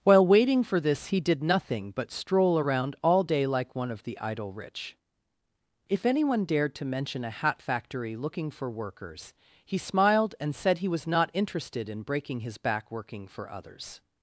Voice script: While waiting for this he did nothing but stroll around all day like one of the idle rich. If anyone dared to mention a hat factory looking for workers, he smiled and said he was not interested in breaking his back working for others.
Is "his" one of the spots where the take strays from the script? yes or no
no